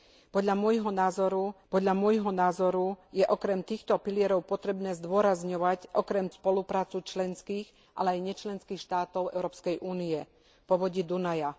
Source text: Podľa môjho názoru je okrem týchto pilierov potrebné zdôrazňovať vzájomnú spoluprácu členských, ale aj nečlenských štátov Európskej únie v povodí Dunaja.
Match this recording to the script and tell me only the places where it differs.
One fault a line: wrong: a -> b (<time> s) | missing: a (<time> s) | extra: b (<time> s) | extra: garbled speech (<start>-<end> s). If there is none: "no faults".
extra: podľa môjho názoru (1.7 s)
wrong: vzájomnú -> okrem (5.9 s)